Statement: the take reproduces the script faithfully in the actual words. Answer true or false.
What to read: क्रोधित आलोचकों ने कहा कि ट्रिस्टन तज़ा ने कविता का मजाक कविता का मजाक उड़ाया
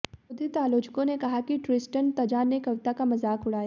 false